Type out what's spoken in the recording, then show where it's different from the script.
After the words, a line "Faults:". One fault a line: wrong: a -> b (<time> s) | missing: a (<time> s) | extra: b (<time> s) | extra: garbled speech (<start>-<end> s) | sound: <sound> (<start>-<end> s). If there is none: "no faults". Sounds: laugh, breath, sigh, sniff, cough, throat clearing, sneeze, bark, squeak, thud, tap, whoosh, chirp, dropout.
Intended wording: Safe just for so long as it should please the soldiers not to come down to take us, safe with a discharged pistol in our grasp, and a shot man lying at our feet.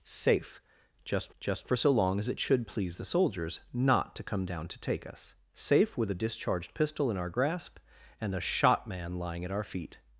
Safe just just for so long as it should please the soldiers not to come down to take us, safe with a discharged pistol in our grasp, and a shot man lying at our feet.
Faults:
extra: just (1.4 s)